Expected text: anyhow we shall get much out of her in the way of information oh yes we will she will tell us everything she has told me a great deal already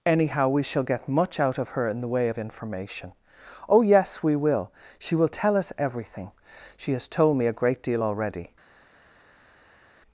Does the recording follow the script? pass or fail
pass